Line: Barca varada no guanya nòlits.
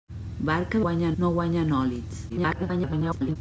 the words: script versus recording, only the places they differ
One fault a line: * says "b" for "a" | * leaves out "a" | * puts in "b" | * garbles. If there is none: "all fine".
* says "guanya" for "varada"
* garbles